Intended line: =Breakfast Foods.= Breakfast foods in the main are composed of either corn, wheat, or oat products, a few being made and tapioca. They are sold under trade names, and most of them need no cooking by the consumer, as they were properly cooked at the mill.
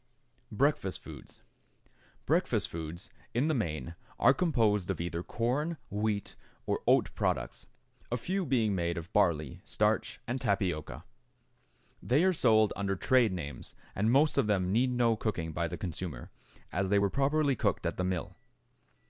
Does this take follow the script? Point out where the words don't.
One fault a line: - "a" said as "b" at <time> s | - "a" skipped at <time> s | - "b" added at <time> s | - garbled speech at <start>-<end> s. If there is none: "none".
- "of barley starch" added at 9.0 s